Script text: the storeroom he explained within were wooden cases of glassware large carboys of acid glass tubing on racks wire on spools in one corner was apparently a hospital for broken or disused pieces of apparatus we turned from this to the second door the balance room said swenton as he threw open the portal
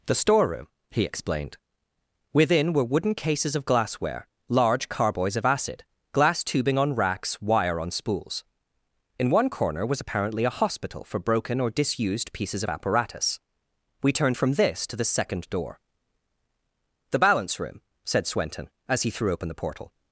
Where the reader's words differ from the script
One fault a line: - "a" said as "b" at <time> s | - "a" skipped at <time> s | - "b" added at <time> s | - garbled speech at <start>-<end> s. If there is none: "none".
none